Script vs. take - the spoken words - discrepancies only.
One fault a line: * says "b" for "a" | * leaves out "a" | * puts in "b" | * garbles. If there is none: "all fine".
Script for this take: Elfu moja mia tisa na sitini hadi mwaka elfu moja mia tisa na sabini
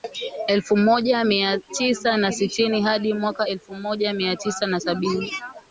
all fine